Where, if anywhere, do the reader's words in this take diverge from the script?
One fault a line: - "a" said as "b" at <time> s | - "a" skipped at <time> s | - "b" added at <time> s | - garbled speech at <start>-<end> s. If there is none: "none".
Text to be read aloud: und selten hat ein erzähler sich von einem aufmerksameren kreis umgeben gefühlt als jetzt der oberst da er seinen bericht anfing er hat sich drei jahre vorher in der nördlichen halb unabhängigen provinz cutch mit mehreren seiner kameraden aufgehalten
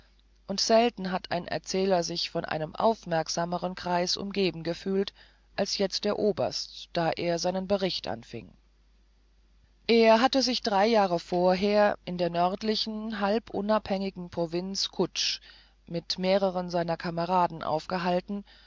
- "hat" said as "hatte" at 10.2 s